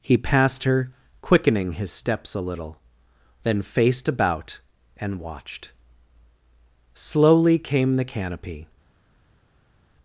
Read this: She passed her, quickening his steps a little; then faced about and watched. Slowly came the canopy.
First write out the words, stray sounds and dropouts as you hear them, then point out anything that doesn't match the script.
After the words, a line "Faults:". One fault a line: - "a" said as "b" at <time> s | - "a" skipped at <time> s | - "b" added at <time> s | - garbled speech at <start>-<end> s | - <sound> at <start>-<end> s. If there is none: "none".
He passed her, quickening his steps a little; then faced about and watched. Slowly came the canopy.
Faults:
- "She" said as "He" at 0.0 s